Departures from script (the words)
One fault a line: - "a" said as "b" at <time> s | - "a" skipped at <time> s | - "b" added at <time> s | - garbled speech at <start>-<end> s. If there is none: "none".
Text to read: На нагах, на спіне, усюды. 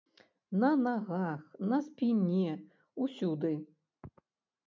none